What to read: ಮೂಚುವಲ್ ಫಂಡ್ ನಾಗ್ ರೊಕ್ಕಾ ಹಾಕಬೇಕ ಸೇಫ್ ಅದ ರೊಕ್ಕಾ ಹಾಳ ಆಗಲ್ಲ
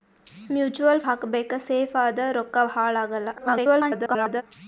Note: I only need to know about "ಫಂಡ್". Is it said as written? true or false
false